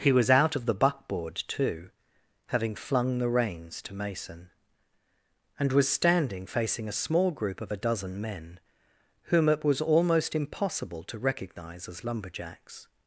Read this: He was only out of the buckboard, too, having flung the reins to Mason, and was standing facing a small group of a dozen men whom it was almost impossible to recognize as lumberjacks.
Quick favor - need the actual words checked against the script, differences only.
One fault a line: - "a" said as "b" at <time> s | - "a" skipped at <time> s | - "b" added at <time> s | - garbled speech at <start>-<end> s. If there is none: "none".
- "only" skipped at 0.3 s